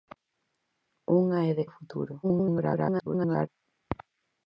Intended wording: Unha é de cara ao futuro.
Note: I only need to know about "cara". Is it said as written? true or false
false